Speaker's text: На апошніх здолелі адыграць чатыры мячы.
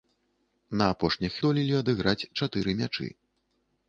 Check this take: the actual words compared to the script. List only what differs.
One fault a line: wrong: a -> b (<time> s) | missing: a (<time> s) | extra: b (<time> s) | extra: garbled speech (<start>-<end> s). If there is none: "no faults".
no faults